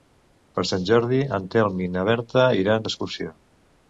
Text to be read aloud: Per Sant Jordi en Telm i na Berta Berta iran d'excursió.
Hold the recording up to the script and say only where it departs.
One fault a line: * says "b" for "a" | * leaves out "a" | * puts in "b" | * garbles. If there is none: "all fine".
* leaves out "Berta"